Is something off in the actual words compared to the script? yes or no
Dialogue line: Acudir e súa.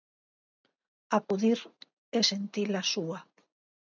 yes